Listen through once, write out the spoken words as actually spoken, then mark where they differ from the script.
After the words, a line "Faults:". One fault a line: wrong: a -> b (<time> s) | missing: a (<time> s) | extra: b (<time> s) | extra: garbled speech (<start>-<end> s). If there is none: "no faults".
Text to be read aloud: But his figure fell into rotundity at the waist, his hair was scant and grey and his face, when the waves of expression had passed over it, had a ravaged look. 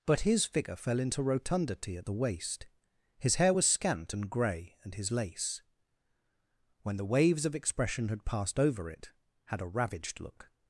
But his figure fell into rotundity at the waist, his hair was scant and grey and his lace, when the waves of expression had passed over it, had a ravaged look.
Faults:
wrong: face -> lace (5.1 s)